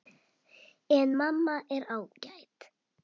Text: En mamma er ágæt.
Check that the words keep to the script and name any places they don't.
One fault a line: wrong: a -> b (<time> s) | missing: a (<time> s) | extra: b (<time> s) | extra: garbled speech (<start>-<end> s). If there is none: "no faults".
no faults